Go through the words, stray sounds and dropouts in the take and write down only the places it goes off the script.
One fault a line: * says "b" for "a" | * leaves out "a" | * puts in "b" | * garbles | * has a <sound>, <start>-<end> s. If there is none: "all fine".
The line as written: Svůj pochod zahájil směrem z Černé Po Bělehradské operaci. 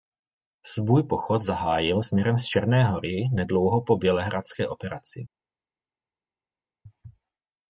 * puts in "Hory nedlouho"